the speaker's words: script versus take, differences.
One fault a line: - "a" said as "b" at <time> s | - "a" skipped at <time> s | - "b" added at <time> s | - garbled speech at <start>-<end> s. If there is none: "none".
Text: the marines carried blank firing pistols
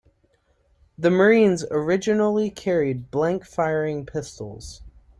- "originally" added at 1.7 s